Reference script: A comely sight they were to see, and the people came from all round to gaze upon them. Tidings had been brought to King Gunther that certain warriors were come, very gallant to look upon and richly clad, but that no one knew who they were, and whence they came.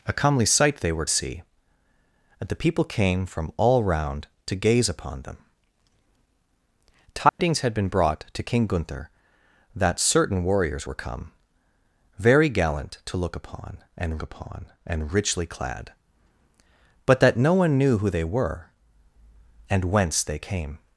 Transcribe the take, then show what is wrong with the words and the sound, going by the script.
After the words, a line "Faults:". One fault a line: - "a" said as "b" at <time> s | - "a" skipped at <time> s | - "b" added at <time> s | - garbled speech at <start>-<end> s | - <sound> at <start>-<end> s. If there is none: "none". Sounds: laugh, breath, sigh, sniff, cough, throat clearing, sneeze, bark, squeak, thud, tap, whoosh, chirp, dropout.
A comely sight they were see, and the people came from all round to gaze upon them. Tidings had been brought to King Gunther that certain warriors were come, very gallant to look upon and upon and richly clad, but that no one knew who they were, and whence they came.
Faults:
- "to" skipped at 1.1 s
- dropout at 7.3-7.4 s
- "upon and" added at 14.2 s